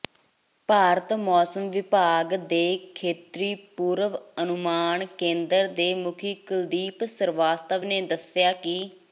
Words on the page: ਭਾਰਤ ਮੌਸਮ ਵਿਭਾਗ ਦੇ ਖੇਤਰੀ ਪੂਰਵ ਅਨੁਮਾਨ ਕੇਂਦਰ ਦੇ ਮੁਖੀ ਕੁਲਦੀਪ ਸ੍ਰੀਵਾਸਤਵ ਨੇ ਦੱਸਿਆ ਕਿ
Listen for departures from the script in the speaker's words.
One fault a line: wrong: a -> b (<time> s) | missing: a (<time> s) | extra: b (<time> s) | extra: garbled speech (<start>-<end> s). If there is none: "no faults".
no faults